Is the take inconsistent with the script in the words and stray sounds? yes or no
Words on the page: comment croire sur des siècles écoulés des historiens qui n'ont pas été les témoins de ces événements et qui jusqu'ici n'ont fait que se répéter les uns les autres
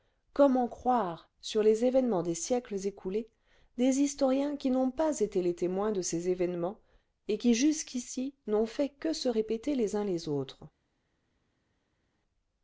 yes